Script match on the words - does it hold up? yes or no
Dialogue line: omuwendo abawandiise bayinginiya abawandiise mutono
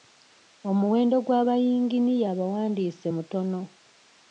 no